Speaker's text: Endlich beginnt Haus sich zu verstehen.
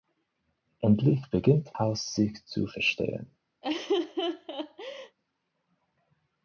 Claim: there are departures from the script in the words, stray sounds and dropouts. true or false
true